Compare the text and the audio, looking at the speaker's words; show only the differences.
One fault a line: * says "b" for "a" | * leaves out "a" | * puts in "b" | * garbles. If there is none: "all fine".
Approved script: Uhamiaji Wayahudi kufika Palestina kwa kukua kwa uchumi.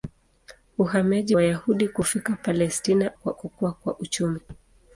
all fine